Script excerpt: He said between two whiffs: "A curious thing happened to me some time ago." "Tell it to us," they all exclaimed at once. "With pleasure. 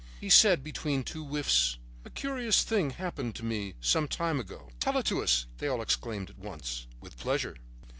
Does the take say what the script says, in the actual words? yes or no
yes